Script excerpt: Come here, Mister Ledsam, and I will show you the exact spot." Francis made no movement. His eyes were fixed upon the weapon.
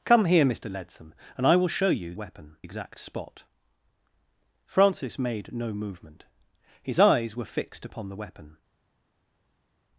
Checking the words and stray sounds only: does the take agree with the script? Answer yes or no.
no